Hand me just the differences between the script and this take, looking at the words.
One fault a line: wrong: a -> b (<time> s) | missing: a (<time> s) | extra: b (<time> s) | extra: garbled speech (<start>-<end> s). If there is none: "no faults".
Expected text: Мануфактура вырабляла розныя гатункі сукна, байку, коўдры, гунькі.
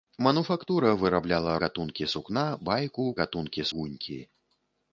missing: розныя (1.5 s)
wrong: коўдры -> гатункі (3.2 s)